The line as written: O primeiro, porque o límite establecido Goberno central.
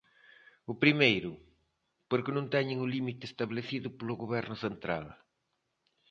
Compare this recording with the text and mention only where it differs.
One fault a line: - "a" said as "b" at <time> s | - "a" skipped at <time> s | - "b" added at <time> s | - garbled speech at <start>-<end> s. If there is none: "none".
- "non teñen" added at 2.4 s
- "polo" added at 4.0 s